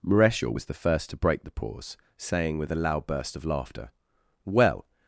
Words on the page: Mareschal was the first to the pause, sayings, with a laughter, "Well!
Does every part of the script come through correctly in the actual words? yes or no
no